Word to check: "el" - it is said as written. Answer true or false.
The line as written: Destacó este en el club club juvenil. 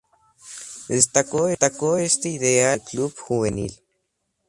true